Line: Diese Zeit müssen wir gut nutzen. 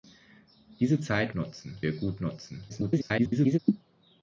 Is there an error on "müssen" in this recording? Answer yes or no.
yes